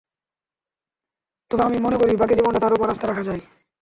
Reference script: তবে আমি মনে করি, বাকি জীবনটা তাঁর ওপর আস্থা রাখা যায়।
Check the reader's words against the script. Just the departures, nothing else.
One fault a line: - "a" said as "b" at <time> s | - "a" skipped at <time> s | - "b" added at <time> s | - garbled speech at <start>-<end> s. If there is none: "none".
none